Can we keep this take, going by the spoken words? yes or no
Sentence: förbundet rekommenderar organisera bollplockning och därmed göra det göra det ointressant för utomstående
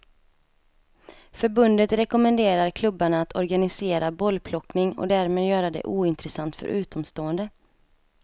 no